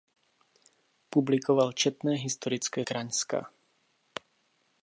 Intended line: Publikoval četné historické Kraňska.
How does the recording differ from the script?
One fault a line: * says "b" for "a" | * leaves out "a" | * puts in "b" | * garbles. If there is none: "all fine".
all fine